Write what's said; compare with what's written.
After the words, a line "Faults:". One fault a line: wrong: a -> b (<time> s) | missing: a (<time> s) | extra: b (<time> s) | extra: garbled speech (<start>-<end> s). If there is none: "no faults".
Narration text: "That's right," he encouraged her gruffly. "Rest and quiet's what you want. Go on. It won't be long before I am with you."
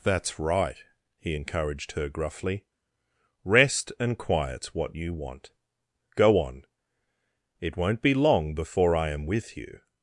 "That's right," he encouraged her gruffly. "Rest and quiet's what you want. Go on. It won't be long before I am with you."
Faults:
no faults